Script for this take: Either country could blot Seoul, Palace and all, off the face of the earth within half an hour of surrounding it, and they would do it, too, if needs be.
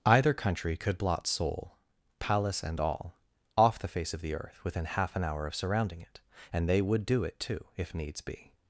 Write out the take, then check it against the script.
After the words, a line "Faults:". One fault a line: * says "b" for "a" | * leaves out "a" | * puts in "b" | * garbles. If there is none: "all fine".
Either country could blot Seoul, Palace and all, off the face of the earth within half an hour of surrounding it, and they would do it, too, if needs be.
Faults:
all fine